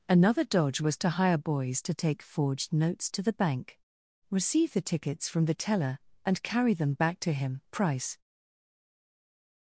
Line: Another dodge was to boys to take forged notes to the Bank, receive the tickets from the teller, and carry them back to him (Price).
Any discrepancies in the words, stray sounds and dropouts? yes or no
yes